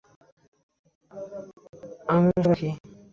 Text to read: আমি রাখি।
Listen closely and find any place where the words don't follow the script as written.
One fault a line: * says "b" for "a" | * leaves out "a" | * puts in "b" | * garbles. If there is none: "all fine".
all fine